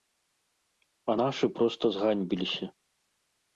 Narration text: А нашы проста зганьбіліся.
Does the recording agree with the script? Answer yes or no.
yes